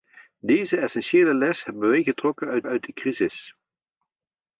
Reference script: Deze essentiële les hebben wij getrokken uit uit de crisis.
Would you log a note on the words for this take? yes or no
no